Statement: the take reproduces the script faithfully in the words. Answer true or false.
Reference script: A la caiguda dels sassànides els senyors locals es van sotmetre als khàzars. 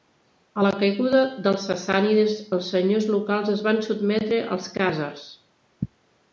true